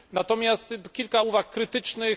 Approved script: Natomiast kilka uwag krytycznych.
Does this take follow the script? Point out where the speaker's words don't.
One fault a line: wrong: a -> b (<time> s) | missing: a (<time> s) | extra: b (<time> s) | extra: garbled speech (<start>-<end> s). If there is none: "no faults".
no faults